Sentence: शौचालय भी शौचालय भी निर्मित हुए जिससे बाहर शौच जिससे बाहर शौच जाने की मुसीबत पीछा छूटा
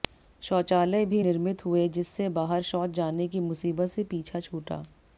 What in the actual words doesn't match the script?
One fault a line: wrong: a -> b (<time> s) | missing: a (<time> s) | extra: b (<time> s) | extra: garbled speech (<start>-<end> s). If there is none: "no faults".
missing: शौचालय भी (1.2 s)
missing: जिससे बाहर शौच (2.9 s)
extra: से (3.9 s)